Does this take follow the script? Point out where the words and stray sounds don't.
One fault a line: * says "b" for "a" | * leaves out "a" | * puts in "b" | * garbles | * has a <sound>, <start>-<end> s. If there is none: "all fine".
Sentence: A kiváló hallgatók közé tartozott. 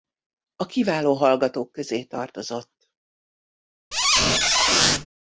* has a squeak, 3.9-5.1 s